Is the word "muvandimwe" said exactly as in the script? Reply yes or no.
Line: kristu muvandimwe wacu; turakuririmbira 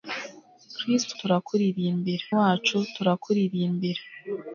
no